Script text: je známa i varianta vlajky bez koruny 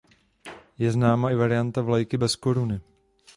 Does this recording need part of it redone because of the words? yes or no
no